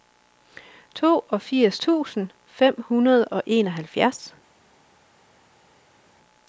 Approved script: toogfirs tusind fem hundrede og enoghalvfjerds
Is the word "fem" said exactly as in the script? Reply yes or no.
yes